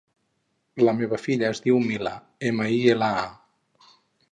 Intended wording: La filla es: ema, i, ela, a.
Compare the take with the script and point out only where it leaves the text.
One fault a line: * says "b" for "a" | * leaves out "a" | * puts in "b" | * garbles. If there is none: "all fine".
* puts in "meva"
* puts in "diu Mila"